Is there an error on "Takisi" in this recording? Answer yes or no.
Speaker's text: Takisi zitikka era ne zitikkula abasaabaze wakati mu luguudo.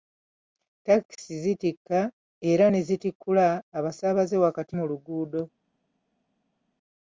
no